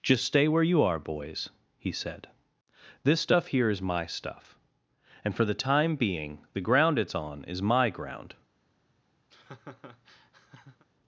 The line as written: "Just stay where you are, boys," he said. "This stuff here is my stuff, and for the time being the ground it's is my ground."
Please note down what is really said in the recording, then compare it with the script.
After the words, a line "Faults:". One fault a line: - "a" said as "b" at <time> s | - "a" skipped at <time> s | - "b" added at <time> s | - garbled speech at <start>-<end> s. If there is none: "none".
"Just stay where you are, boys," he said. "This stuff here is my stuff, and for the time being the ground it's on is my ground."
Faults:
- "on" added at 7.1 s